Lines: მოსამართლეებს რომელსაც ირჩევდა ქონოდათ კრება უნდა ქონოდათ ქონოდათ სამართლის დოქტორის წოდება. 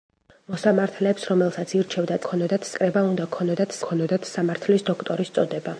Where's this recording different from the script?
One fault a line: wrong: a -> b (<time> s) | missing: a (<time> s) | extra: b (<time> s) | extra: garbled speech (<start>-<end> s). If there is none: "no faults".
no faults